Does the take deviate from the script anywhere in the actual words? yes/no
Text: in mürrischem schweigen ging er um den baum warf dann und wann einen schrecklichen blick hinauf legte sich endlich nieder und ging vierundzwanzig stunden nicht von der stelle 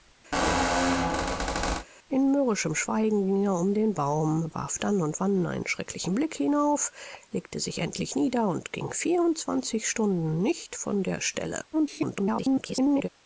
yes